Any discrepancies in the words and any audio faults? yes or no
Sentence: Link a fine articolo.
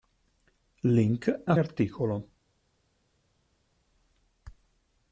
yes